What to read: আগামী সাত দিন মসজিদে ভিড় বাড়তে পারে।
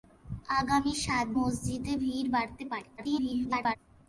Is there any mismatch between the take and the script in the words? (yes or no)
yes